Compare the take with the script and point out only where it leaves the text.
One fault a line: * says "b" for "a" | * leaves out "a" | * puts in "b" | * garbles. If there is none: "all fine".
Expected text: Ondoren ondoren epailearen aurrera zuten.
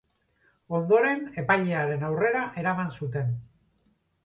* leaves out "ondoren"
* puts in "eraman"